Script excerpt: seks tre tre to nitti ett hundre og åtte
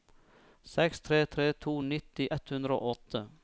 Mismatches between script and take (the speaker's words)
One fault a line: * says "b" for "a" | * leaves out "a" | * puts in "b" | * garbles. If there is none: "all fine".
all fine